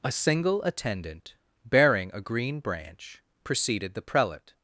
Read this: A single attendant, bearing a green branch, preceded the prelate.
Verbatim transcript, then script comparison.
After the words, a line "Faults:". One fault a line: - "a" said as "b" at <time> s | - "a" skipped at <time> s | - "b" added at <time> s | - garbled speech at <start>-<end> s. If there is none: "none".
A single attendant, bearing a green branch, preceded the prelate.
Faults:
none